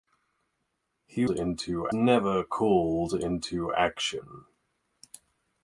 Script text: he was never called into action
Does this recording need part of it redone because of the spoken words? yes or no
yes